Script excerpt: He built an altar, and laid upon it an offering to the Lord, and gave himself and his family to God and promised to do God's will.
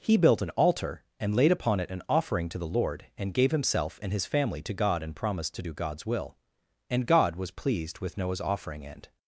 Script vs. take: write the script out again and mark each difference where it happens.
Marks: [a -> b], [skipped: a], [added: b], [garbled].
He built an altar, and laid upon it an offering to the Lord, and gave himself and his family to God and promised to do God's will. [added: And God was pleased with Noah's offering and]